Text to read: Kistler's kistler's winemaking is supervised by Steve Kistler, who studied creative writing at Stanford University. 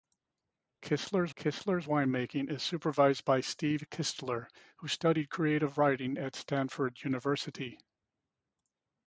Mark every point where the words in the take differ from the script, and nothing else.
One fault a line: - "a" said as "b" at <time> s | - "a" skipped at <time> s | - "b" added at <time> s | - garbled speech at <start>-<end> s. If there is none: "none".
none